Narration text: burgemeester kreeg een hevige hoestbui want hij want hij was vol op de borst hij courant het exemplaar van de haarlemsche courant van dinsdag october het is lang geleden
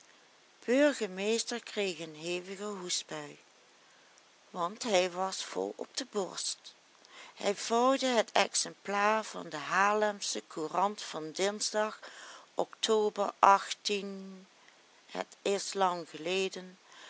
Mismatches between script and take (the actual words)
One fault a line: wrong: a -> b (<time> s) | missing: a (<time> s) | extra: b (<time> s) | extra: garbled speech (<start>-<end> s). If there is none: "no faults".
missing: want hij (5.1 s)
wrong: courant -> vouwde (7.5 s)